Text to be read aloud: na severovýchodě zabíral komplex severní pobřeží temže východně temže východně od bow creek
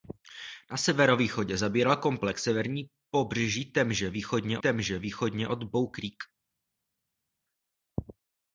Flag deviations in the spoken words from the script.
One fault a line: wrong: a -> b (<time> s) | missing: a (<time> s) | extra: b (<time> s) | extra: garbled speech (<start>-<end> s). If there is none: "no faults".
no faults